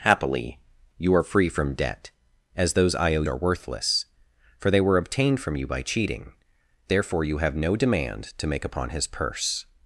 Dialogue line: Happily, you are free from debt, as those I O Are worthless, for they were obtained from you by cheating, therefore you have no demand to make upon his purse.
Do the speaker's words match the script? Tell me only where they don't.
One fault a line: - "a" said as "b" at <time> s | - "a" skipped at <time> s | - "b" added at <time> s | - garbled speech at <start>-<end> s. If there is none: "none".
none